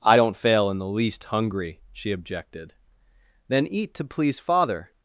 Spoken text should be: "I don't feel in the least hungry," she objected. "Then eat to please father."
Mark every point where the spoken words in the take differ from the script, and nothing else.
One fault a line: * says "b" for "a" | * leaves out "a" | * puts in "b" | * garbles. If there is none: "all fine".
* says "fail" for "feel"